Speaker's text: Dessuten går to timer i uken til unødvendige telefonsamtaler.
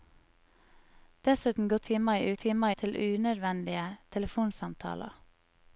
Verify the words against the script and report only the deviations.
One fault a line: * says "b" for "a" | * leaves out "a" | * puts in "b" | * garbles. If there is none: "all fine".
* leaves out "to"
* says "timer" for "uken"